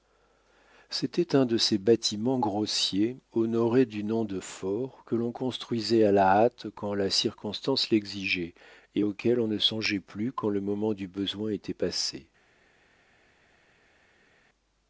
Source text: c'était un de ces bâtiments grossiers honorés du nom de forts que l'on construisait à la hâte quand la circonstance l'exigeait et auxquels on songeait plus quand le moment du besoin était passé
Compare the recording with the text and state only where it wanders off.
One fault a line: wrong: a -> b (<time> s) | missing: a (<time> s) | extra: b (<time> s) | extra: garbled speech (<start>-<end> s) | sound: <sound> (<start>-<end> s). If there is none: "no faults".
extra: ne (9.5 s)